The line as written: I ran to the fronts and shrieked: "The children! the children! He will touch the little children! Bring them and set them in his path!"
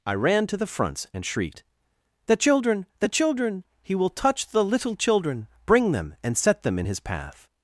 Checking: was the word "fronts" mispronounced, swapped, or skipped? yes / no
no